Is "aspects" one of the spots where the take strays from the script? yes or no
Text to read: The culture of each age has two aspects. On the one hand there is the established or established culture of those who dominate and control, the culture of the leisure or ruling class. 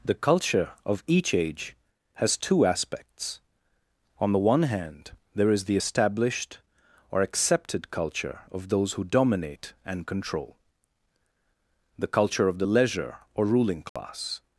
no